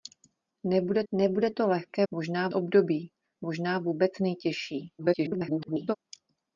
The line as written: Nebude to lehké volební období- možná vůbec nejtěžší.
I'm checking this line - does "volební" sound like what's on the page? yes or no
no